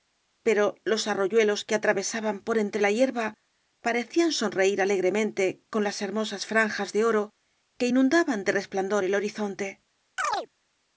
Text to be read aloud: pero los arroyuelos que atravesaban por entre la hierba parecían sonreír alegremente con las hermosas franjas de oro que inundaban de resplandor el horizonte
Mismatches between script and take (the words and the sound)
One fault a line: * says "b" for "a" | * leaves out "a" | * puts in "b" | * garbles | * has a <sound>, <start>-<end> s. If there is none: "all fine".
* has a chirp, 10.2-10.5 s